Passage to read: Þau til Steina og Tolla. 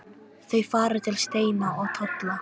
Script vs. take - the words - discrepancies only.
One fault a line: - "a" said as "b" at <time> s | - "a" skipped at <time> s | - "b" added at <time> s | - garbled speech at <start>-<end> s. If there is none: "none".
- "fara" added at 0.7 s